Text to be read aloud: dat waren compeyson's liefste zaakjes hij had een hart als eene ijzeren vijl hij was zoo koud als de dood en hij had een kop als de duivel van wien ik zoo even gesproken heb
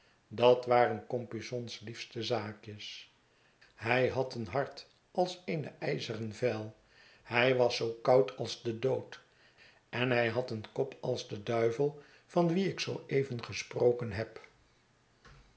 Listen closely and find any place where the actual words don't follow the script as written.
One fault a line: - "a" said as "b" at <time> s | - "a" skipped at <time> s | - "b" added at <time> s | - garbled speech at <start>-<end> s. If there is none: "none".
none